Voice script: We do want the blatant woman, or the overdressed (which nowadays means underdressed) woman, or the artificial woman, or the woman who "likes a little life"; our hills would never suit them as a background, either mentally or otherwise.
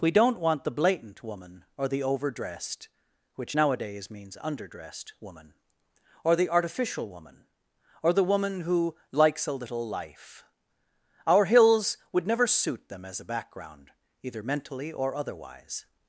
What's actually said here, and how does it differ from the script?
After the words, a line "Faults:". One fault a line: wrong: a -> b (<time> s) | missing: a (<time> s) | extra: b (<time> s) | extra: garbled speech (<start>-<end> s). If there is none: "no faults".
We don't want the blatant woman, or the overdressed (which nowadays means underdressed) woman, or the artificial woman, or the woman who "likes a little life"; our hills would never suit them as a background, either mentally or otherwise.
Faults:
wrong: do -> don't (0.1 s)